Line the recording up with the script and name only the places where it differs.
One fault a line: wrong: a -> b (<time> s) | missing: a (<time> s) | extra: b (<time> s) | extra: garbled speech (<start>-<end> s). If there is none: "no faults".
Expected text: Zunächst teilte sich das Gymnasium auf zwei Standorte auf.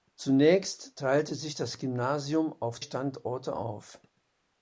missing: zwei (2.8 s)